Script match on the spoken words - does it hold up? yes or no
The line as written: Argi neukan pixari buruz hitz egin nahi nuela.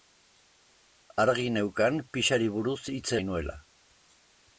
no